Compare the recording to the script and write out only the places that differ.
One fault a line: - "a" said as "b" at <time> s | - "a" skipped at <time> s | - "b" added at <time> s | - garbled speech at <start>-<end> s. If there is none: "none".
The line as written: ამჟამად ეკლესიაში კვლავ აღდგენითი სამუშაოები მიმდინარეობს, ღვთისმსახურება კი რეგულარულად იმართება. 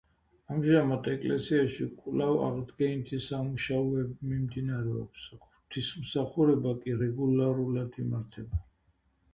none